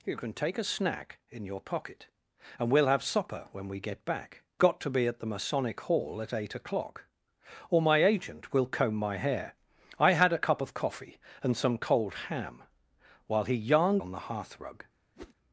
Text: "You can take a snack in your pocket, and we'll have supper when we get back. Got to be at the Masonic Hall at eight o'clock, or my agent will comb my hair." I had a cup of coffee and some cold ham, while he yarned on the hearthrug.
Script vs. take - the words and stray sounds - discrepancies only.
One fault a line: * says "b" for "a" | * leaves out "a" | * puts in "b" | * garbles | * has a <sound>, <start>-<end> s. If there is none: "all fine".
* has a whoosh, 15.1-15.3 s